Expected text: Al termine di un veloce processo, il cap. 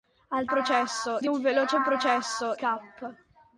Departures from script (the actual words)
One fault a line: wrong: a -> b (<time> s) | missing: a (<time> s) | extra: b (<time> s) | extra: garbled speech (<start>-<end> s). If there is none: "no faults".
wrong: termine -> processo (0.4 s)
missing: il (2.6 s)